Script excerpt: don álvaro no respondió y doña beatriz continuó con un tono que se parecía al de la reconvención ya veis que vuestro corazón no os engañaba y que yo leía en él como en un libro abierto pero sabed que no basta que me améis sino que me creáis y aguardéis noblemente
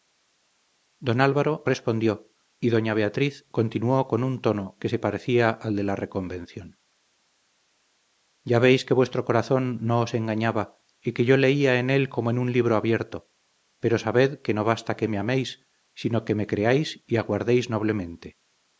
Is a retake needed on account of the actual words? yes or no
yes